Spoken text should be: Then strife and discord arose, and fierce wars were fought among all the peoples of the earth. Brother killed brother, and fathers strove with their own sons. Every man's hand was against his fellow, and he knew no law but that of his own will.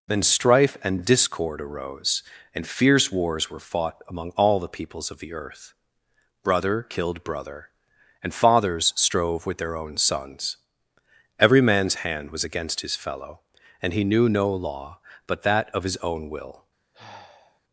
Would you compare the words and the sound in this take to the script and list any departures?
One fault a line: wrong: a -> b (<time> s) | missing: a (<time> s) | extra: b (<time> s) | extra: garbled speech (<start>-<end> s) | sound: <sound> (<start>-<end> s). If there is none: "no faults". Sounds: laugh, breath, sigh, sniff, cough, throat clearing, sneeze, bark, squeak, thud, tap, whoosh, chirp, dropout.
sound: sigh (16.9-17.6 s)